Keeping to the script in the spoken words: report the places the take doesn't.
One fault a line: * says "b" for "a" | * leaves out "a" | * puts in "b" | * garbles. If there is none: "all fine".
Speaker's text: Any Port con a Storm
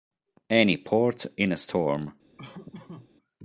* says "in" for "con"